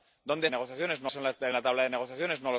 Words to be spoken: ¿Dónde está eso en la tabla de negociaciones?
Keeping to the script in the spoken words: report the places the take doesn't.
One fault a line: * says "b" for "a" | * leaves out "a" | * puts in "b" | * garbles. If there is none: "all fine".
* says "negociaciones" for "está"